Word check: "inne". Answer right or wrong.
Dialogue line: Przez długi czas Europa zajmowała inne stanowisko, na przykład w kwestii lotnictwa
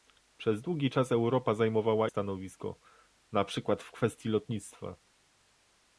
wrong